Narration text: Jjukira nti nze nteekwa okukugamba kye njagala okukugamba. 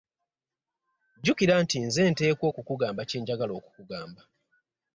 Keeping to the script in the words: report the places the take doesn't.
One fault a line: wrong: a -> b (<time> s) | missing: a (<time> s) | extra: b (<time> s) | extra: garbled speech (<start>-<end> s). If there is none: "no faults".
no faults